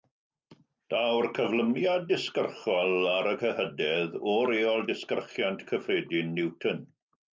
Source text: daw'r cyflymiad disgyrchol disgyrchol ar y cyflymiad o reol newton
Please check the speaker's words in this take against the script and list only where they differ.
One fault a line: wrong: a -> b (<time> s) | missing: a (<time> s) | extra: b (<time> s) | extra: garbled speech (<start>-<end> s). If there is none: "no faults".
missing: disgyrchol (3.0 s)
wrong: cyflymiad -> cyhydedd (3.4 s)
extra: disgyrchiant cyffredin (4.9 s)